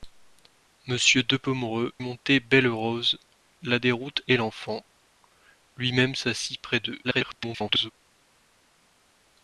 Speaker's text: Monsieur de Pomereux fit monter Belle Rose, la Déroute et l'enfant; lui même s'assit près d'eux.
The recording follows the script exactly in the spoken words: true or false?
false